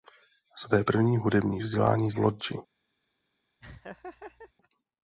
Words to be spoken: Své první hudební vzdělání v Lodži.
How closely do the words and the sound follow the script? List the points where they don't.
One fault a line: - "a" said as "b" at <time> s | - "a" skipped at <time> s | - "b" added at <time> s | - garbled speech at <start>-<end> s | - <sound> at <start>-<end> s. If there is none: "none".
- laugh at 3.6-4.5 s